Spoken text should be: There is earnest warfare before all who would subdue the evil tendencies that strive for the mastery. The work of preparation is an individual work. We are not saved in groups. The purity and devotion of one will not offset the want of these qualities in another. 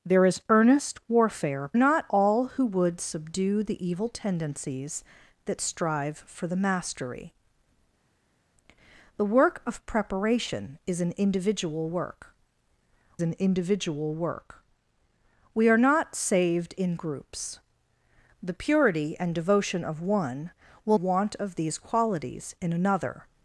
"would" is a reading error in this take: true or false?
false